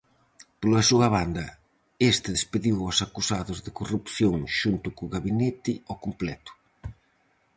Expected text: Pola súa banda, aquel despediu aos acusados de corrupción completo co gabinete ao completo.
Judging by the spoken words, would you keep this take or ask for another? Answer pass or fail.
fail